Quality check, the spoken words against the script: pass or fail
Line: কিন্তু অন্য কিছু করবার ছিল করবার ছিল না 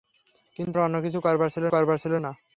pass